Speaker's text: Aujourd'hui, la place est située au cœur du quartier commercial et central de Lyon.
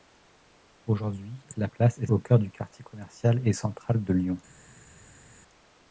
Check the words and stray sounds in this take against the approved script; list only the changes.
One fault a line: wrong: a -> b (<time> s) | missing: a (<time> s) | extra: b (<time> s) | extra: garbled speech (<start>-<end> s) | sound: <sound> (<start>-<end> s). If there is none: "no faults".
missing: située (2.1 s)